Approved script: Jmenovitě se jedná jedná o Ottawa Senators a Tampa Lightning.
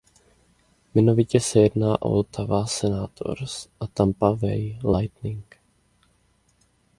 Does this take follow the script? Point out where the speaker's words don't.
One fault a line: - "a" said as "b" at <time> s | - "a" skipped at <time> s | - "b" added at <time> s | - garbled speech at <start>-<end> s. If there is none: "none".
- "jedná" skipped at 2.0 s
- "Bay" added at 4.3 s